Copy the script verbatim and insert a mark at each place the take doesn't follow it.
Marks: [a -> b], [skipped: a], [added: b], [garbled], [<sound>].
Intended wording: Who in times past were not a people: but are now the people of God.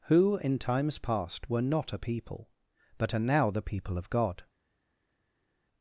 Who in times past were not a people: but are now the people of God.